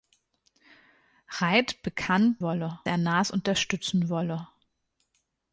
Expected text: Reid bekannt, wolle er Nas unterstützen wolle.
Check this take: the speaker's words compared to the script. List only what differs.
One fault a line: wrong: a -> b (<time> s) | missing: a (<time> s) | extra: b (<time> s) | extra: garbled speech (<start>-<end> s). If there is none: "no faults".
no faults